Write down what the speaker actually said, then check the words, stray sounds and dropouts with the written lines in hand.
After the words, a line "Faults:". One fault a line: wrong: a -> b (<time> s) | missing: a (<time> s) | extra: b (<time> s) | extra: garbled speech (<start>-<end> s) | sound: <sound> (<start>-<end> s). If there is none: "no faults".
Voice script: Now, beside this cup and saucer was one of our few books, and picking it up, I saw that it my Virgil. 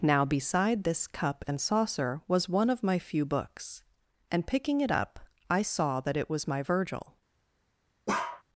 Now, beside this cup and saucer was one of my few books, and picking it up, I saw that it was my Virgil.
Faults:
wrong: our -> my (2.8 s)
extra: was (6.3 s)
sound: bark (8.1-8.4 s)